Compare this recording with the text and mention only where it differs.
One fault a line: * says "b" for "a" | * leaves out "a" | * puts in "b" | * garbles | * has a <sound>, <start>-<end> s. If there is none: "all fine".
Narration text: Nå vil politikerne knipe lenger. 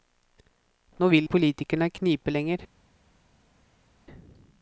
all fine